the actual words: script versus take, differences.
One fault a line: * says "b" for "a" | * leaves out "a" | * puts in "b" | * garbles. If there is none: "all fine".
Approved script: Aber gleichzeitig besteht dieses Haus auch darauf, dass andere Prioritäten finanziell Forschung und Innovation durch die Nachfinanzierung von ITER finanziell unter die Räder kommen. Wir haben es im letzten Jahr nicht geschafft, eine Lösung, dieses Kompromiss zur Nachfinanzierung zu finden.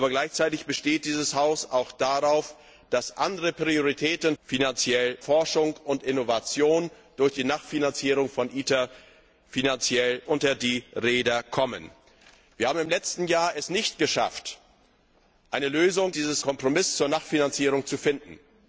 all fine